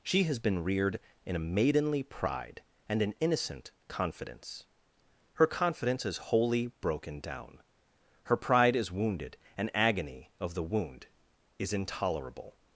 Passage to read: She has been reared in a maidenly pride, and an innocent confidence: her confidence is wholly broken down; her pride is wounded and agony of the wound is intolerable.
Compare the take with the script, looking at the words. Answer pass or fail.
pass